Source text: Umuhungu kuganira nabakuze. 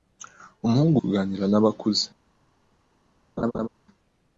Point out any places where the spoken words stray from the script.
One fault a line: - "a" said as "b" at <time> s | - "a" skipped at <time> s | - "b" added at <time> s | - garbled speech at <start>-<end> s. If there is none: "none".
none